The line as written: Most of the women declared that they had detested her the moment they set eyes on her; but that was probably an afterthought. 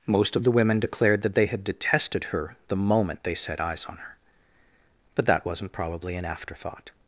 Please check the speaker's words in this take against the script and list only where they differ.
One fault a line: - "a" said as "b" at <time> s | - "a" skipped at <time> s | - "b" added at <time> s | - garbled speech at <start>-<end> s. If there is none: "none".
- "was" said as "wasn't" at 5.4 s